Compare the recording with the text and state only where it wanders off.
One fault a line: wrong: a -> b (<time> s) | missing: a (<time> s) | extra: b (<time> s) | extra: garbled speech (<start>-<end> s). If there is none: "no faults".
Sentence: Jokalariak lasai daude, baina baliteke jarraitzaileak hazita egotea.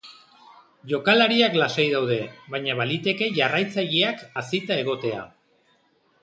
no faults